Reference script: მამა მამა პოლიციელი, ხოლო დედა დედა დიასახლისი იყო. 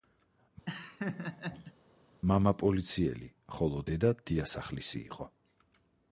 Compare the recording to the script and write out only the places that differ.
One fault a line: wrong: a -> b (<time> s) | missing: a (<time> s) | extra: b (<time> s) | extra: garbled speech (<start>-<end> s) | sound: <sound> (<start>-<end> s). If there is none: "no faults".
sound: laugh (0.7-1.7 s)
missing: მამა (2.5 s)
missing: დედა (4.1 s)